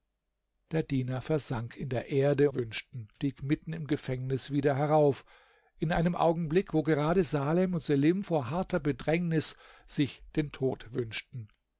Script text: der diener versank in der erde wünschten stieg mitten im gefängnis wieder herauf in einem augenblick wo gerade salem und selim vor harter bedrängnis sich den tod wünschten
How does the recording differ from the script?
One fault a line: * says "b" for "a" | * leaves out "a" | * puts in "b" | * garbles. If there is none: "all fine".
all fine